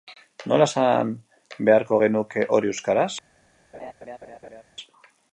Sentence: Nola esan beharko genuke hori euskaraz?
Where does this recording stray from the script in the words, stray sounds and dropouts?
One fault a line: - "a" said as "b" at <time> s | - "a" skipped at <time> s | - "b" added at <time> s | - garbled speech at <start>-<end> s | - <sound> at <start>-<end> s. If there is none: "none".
- laugh at 3.7-4.6 s